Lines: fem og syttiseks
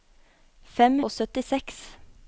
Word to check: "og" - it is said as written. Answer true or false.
true